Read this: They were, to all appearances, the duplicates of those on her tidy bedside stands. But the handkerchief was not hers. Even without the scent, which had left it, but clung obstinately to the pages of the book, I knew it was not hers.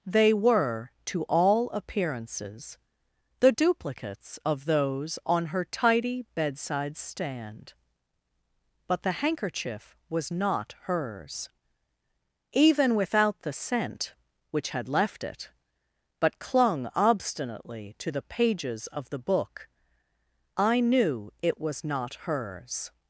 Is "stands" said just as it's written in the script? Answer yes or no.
no